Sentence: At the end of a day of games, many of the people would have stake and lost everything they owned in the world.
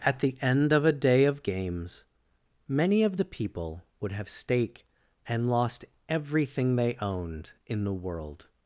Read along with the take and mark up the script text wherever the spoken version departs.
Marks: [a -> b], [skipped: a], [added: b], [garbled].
At the end of a day of games, many of the people would have stake and lost everything they owned in the world.